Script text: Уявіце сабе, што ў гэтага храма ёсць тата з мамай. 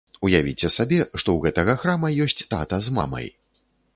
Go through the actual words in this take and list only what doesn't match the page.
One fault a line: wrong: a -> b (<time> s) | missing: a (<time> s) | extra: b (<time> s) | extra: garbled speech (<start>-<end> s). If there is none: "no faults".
no faults